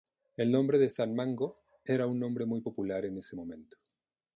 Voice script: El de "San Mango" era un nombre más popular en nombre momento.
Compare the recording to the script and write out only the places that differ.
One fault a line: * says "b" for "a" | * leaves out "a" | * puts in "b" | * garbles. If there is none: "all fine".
* puts in "nombre"
* says "muy" for "más"
* says "ese" for "nombre"